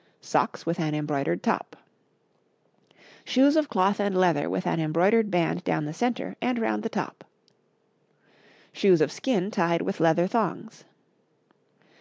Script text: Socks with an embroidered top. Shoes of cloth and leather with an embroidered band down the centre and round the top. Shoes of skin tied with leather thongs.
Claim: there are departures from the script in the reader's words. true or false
false